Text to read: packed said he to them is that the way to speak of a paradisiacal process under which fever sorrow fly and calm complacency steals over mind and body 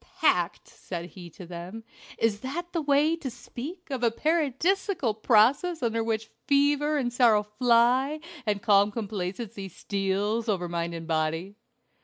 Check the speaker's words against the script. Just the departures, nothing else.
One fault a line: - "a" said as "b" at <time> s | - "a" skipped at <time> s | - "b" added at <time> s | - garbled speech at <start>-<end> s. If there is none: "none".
- "and" added at 7.0 s